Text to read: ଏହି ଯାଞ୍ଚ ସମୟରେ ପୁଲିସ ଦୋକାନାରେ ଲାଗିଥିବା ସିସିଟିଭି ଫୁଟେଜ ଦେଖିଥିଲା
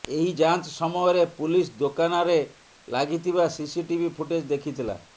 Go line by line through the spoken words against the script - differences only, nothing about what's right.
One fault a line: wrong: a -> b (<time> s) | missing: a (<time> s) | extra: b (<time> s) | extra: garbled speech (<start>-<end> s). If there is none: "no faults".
no faults